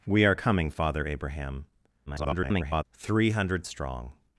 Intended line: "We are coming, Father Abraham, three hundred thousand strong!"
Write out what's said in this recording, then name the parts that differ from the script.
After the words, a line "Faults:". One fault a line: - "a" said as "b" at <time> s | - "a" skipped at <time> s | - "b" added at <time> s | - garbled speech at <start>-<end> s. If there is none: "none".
"We are coming, Father Abraham, [garbled] three hundred strong!"
Faults:
- garbled speech at 2.1-2.8 s
- "thousand" skipped at 3.6 s